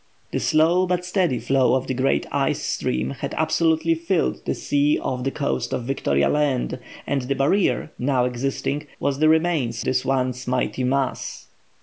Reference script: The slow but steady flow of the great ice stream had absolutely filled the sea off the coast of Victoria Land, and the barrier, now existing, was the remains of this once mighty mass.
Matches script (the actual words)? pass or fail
fail